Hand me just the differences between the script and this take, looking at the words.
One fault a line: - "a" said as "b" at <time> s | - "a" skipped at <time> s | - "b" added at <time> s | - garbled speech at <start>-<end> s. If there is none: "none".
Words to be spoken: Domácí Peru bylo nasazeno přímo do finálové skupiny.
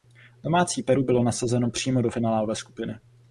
none